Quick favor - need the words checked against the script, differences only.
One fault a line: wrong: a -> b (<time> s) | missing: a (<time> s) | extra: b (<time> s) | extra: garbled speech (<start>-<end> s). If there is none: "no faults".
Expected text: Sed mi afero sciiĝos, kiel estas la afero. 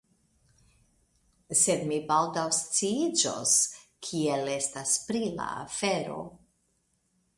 wrong: afero -> baldaŭ (2.1 s)
extra: pri (5.1 s)